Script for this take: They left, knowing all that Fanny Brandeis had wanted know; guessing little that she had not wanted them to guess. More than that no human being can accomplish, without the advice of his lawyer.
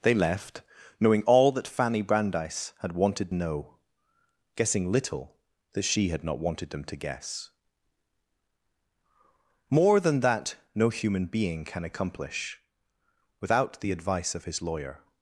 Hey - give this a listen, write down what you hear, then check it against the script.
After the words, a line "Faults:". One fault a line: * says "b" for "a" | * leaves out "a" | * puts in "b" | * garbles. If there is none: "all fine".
They left, knowing all that Fanny Brandeis had wanted know; guessing little that she had not wanted them to guess. More than that no human being can accomplish, without the advice of his lawyer.
Faults:
all fine